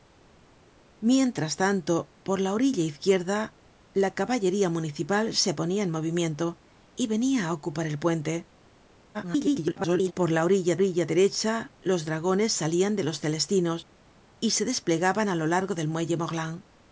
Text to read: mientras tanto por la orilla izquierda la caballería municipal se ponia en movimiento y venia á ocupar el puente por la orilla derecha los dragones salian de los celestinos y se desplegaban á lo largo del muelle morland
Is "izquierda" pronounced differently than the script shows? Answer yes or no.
no